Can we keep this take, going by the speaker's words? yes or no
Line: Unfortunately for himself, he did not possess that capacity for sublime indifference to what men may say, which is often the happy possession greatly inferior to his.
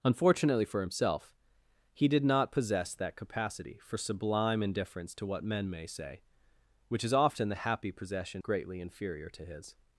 yes